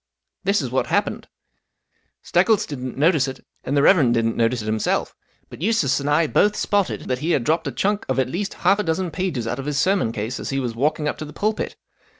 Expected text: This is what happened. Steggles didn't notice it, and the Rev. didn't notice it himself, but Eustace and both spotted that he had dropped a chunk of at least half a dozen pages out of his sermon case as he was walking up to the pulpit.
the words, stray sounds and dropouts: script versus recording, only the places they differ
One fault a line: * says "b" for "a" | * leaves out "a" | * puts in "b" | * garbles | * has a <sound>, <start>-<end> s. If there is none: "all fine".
* puts in "I"